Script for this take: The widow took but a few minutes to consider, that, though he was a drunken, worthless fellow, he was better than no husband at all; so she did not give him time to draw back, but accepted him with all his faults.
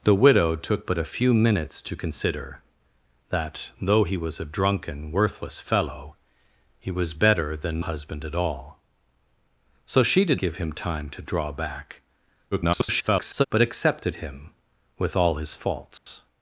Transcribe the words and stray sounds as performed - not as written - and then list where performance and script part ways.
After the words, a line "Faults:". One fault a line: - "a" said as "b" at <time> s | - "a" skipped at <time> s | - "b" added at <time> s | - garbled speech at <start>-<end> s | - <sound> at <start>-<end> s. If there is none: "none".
The widow took but a few minutes to consider, that, though he was a drunken, worthless fellow, he was better than husband at all; so she did give him time to draw back, [garbled] but accepted him with all his faults.
Faults:
- "no" skipped at 7.8 s
- "not" skipped at 10.4 s
- garbled speech at 12.5-13.5 s
- dropout at 16.0-16.1 s